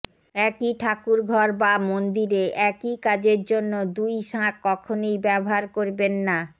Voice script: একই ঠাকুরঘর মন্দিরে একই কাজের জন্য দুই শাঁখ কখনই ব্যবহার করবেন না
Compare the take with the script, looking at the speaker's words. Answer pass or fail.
fail